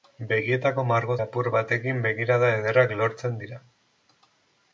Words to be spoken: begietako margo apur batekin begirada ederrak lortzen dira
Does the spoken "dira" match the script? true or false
true